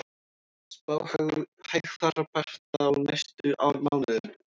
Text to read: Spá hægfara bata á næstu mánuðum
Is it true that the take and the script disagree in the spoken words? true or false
false